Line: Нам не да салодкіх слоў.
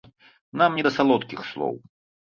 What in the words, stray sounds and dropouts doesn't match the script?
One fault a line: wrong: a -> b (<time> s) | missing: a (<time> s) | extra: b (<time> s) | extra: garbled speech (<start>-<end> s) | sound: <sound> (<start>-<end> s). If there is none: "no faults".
no faults